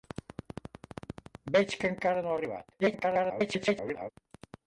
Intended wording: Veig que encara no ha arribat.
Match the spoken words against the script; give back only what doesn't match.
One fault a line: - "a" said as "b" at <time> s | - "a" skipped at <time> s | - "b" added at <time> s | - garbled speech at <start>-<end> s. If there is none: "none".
- garbled speech at 2.8-4.1 s